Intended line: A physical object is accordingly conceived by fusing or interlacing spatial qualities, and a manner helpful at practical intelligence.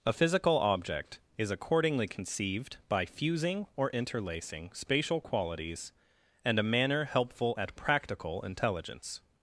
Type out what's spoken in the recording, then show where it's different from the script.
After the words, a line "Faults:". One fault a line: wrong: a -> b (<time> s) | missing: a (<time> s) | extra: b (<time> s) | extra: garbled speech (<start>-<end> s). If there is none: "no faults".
A physical object is accordingly conceived by fusing or interlacing spatial qualities, and a manner helpful at practical intelligence.
Faults:
no faults